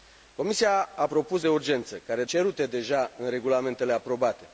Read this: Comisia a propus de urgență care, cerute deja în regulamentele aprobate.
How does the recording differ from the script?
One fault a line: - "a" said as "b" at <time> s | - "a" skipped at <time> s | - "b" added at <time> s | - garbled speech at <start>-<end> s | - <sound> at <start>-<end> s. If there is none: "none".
none